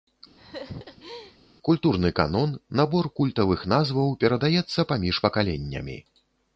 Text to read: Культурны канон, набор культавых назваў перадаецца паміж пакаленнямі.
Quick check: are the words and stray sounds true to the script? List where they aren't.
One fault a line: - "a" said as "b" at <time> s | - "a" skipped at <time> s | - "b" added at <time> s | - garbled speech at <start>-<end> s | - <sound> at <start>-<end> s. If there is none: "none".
- laugh at 0.4-1.4 s